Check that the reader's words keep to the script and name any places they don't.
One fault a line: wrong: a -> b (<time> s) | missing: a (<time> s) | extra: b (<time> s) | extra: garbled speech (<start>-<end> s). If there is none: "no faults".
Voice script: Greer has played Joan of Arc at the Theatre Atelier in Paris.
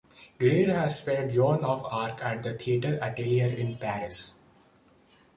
no faults